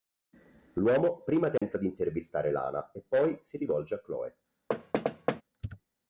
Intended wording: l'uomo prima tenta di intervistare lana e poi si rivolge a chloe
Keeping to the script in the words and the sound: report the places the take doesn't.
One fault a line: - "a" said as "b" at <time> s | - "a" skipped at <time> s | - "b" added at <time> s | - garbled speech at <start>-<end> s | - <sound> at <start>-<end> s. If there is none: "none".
- dropout at 1.6-1.6 s
- thud at 4.7-5.4 s